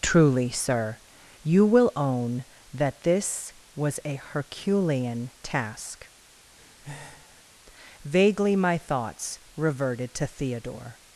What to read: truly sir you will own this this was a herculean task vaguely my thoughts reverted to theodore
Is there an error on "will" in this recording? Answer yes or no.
no